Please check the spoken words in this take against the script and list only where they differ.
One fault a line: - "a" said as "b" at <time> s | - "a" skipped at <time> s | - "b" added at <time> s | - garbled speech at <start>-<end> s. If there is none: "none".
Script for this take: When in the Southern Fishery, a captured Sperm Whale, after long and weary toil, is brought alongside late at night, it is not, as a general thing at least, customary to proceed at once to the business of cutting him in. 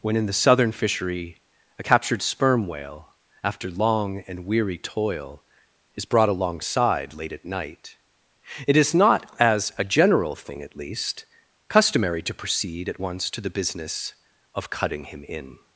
none